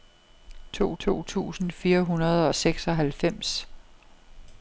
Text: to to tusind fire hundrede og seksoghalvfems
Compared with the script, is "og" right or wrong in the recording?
right